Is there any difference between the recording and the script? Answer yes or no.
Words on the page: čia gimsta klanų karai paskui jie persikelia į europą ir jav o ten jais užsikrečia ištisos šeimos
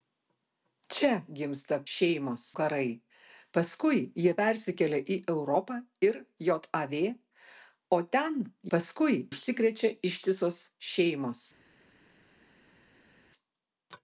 yes